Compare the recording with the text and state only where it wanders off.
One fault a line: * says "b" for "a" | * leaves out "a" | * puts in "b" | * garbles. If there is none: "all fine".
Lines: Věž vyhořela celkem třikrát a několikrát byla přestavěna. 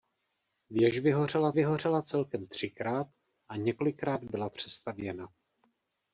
* puts in "vyhořela"